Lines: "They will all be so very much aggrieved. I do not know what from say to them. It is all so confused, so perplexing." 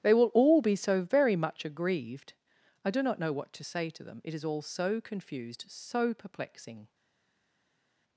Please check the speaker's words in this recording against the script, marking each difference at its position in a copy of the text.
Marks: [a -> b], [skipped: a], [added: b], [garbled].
"They will all be so very much aggrieved. I do not know what [from -> to] say to them. It is all so confused, so perplexing."